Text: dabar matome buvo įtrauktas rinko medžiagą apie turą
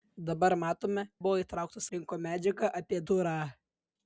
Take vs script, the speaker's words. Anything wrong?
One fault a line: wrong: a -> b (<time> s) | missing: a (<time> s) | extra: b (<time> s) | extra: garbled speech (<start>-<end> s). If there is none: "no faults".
no faults